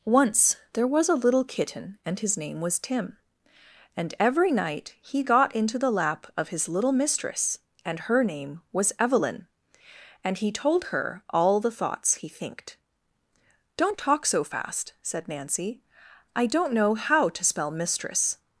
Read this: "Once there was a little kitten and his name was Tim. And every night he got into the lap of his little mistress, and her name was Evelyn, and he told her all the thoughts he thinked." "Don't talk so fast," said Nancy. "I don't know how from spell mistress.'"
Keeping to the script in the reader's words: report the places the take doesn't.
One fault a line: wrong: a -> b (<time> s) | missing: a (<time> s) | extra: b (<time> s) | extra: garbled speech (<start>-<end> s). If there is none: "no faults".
wrong: from -> to (17.3 s)